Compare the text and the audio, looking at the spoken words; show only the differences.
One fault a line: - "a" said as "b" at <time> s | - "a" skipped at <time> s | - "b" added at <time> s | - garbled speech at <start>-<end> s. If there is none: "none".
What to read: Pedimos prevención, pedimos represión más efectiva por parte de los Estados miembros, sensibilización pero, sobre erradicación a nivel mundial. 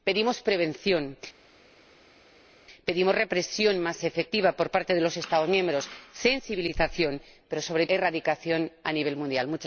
none